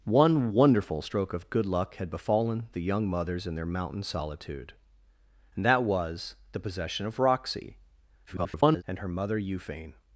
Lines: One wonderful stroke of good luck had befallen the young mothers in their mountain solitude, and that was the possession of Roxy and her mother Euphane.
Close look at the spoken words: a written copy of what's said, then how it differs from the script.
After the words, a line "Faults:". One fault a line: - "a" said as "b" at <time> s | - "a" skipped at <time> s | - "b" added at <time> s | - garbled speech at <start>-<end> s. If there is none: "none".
One wonderful stroke of good luck had befallen the young mothers in their mountain solitude, and that was the possession of Roxy [garbled] and her mother Euphane.
Faults:
- garbled speech at 8.3-8.8 s